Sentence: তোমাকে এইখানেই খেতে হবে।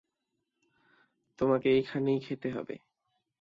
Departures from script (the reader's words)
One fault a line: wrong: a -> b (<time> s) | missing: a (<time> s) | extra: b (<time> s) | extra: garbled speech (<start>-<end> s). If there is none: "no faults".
no faults